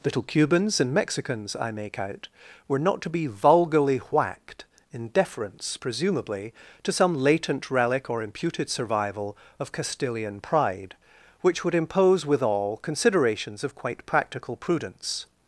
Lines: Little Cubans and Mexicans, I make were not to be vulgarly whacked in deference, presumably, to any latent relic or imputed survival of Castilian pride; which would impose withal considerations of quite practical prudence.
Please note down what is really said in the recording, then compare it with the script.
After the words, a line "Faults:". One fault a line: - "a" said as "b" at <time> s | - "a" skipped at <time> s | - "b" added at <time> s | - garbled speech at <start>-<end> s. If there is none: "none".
Little Cubans and Mexicans, I make out, were not to be vulgarly whacked in deference, presumably, to some latent relic or imputed survival of Castilian pride; which would impose withal considerations of quite practical prudence.
Faults:
- "out" added at 2.0 s
- "any" said as "some" at 6.9 s